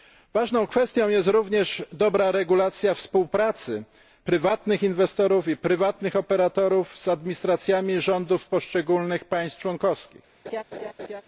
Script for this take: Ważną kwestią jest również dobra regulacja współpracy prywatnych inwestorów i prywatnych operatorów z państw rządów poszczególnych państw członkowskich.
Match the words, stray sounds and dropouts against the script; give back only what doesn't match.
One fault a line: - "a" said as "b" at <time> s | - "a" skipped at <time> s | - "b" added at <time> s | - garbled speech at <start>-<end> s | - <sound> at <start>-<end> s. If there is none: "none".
- "państw" said as "administracjami" at 7.1 s
- laugh at 10.4-11.2 s